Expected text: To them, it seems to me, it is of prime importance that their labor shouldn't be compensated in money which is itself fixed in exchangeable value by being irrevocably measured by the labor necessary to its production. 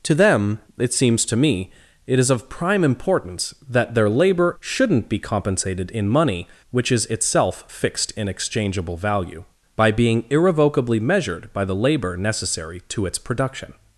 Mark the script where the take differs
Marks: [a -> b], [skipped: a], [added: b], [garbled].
To them, it seems to me, it is of prime importance that their labor shouldn't be compensated in money which is itself fixed in exchangeable value by being irrevocably measured by the labor necessary to its production.